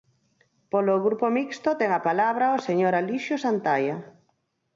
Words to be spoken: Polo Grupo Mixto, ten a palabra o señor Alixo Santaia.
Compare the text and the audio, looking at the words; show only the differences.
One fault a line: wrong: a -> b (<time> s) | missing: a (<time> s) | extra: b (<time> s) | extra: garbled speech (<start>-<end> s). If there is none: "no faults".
no faults